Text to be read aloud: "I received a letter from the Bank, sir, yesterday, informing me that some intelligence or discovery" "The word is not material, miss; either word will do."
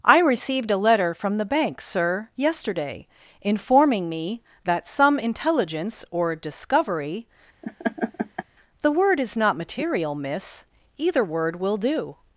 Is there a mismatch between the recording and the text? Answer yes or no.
no